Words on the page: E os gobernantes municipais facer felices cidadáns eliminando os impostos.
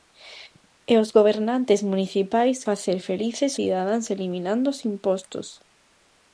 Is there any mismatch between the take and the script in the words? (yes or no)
no